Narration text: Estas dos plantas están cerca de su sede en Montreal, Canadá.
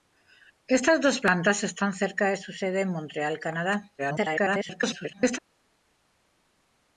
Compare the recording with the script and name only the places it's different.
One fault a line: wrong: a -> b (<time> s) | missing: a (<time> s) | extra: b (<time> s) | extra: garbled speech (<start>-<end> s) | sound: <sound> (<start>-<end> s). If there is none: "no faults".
extra: garbled speech (4.0-5.4 s)